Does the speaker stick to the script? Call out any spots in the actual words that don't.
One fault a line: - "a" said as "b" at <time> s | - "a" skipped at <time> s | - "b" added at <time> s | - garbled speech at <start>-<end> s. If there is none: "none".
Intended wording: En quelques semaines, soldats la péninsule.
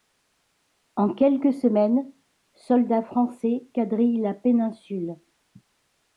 - "français quadrillent" added at 3.0 s